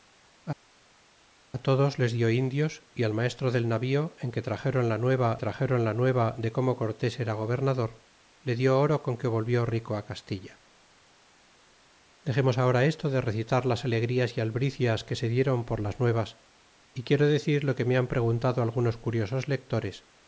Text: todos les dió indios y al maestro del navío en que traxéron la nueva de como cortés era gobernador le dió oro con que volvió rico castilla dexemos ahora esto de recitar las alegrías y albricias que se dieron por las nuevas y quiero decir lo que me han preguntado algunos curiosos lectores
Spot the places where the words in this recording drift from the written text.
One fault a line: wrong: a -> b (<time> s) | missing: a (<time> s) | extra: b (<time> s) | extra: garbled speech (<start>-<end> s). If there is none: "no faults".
extra: traxéron la nueva (5.4 s)